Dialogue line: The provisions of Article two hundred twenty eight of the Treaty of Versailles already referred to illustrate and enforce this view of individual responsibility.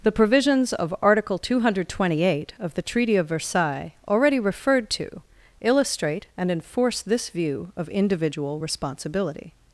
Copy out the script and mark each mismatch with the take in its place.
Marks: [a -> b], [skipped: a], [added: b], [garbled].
The provisions of Article two hundred twenty eight of the Treaty of Versailles already referred to illustrate and enforce this view of individual responsibility.